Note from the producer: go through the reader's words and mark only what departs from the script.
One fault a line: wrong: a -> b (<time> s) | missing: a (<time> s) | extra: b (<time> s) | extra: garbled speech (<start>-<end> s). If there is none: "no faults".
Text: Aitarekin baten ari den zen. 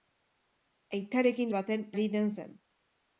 no faults